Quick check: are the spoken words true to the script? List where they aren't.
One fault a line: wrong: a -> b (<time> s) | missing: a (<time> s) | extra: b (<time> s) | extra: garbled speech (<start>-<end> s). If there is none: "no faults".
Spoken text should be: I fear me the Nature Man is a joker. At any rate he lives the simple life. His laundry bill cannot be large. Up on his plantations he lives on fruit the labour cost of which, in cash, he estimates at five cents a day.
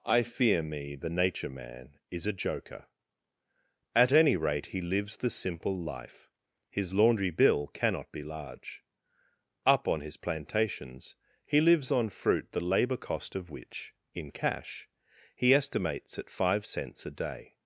no faults